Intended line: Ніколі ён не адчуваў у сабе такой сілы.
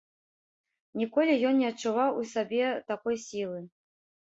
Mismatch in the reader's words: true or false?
false